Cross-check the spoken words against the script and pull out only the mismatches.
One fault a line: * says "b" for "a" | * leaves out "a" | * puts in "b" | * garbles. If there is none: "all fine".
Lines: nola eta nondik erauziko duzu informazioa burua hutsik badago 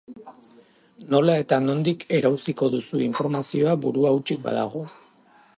all fine